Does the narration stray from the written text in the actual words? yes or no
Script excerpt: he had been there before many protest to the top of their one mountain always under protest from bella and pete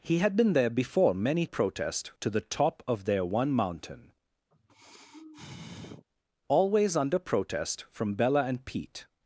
no